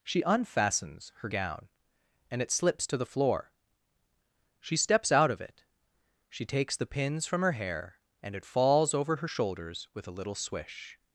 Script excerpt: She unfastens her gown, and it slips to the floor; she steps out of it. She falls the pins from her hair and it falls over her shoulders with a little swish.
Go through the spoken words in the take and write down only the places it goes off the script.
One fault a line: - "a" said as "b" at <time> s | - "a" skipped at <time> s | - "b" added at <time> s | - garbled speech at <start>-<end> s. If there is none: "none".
- "falls" said as "takes" at 6.5 s